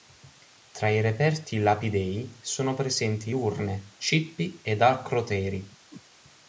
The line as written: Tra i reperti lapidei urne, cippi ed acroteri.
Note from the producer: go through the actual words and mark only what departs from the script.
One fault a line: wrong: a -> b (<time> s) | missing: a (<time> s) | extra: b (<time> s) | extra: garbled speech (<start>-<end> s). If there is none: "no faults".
extra: sono presenti (2.4 s)